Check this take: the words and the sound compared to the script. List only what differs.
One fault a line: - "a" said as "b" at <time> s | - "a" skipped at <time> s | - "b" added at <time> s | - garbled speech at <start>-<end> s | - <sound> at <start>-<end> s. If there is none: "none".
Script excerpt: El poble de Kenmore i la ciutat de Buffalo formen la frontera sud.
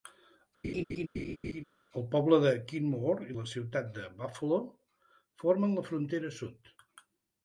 - laugh at 0.6-1.6 s